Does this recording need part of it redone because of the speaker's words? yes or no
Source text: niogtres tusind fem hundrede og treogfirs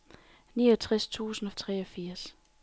yes